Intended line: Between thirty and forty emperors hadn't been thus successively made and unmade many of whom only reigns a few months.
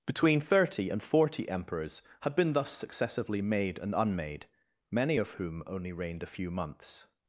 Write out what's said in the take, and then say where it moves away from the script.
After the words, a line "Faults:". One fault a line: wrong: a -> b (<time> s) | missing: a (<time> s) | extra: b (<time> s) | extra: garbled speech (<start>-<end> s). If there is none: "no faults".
Between thirty and forty emperors had been thus successively made and unmade many of whom only reigned a few months.
Faults:
wrong: hadn't -> had (2.2 s)
wrong: reigns -> reigned (5.9 s)